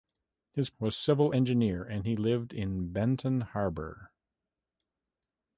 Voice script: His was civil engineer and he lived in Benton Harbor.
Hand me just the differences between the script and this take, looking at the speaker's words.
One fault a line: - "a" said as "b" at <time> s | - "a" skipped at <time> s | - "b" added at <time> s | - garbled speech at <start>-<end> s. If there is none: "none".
none